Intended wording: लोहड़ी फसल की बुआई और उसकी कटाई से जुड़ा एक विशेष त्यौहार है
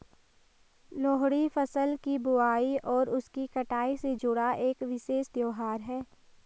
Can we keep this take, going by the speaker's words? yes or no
yes